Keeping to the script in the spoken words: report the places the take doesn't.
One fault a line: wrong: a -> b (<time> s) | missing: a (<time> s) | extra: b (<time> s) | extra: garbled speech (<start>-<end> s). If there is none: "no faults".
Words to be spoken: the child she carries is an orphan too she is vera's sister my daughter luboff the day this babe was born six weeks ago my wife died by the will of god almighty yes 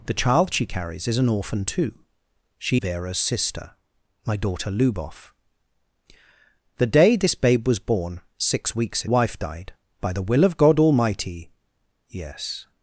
missing: is (2.8 s)
missing: ago my (9.0 s)